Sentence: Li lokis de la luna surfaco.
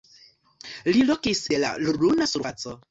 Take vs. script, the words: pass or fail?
pass